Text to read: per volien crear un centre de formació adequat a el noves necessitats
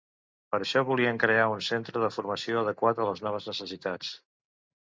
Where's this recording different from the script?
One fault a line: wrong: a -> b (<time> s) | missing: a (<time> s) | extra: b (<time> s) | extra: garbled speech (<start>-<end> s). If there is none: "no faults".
extra: això (0.6 s)
wrong: el -> les (3.1 s)